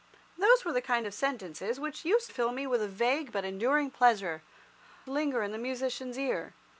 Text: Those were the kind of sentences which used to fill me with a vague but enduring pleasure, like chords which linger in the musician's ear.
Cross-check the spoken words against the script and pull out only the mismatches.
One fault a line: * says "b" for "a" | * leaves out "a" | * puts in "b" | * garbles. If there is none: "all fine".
* leaves out "to"
* leaves out "like chords which"